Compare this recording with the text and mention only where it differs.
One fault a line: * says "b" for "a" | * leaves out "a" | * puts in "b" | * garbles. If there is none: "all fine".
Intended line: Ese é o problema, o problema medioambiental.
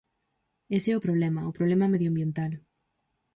all fine